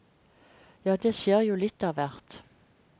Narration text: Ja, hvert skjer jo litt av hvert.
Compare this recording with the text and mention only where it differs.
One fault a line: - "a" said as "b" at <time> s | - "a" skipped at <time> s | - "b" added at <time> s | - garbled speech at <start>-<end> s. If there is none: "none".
- "hvert" said as "det" at 1.0 s